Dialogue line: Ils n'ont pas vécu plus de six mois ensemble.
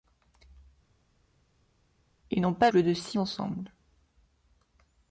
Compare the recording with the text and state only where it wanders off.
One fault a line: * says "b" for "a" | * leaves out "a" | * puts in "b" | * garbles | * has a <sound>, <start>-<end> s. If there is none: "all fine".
* leaves out "vécu"
* leaves out "mois"